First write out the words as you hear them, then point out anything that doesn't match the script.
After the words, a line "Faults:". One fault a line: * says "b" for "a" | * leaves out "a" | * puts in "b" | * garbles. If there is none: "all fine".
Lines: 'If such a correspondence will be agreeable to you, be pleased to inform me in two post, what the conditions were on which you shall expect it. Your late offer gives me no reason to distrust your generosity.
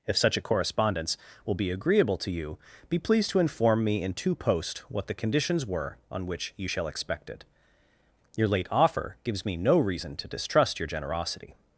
'If such a correspondence will be agreeable to you, be pleased to inform me in two post, what the conditions were on which you shall expect it. Your late offer gives me no reason to distrust your generosity.
Faults:
all fine